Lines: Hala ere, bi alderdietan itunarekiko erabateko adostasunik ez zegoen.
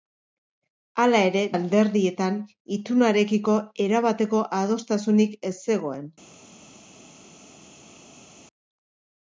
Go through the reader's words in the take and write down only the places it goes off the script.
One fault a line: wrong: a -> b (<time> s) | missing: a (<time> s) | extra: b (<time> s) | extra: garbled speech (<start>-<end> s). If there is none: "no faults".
missing: bi (1.4 s)